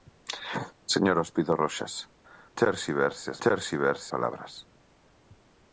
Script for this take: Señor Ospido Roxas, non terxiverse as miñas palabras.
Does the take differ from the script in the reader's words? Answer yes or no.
yes